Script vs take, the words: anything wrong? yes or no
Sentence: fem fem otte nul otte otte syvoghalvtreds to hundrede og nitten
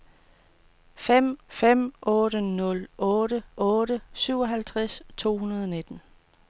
no